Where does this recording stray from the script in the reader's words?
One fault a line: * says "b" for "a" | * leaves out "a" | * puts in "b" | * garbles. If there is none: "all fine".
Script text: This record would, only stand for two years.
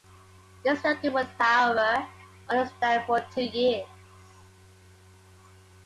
* puts in "however"